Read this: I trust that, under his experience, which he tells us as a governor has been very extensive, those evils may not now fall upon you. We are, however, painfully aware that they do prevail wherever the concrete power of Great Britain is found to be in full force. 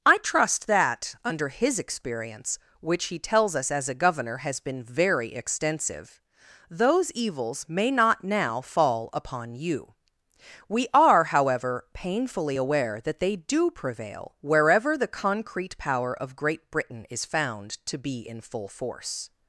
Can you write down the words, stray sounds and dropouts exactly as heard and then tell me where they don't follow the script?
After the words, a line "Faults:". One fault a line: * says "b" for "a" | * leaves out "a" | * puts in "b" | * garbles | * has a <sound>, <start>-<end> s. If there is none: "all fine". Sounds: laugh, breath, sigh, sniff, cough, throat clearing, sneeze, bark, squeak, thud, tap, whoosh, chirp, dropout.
I trust that, under his experience, which he tells us as a governor has been very extensive, those evils may not now fall upon you. We are, however, painfully aware that they do prevail wherever the concrete power of Great Britain is found to be in full force.
Faults:
all fine